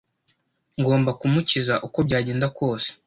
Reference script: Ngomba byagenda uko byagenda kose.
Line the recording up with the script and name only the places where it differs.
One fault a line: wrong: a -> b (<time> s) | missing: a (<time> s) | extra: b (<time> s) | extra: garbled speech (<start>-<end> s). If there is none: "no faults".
wrong: byagenda -> kumukiza (1.2 s)